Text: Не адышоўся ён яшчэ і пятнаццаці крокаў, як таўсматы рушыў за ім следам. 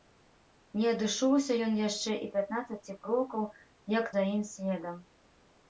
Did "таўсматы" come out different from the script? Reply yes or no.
yes